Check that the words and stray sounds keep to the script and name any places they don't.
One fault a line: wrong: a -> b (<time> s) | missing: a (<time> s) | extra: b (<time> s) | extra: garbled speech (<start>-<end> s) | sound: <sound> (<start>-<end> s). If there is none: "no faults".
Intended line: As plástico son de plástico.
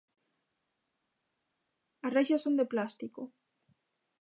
wrong: plástico -> reixas (2.2 s)